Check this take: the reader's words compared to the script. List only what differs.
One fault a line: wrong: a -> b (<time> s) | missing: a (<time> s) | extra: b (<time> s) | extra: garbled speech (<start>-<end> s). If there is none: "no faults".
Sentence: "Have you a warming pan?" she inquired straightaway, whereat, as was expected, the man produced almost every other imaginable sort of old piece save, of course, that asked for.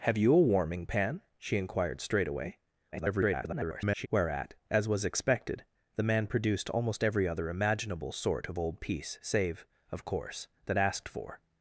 extra: garbled speech (2.9-4.1 s)